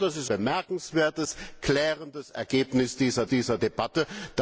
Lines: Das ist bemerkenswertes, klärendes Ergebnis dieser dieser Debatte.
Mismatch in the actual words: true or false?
false